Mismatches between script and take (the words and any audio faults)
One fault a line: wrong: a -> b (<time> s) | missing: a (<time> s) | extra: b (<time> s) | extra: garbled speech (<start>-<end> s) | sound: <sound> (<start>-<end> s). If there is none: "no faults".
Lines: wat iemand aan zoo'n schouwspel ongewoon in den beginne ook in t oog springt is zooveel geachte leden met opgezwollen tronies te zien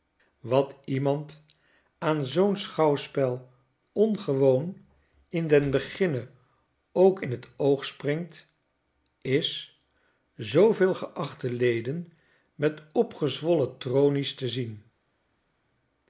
no faults